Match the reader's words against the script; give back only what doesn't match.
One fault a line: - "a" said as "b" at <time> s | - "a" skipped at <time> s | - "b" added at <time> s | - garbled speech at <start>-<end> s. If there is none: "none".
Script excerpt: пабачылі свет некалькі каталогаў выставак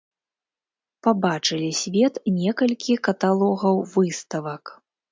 none